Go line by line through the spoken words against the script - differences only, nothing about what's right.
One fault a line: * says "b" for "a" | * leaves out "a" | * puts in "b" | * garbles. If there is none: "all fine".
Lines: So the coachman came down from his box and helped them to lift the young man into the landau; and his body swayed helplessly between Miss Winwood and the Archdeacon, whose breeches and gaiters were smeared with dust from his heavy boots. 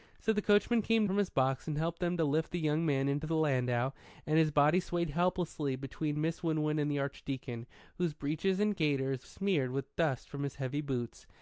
* leaves out "down"
* leaves out "were"